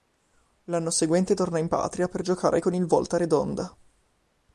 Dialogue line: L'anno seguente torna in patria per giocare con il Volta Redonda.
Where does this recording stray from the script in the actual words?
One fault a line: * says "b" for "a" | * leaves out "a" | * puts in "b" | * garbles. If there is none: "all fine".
all fine